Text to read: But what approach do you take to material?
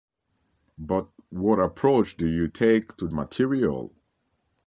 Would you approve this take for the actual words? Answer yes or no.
yes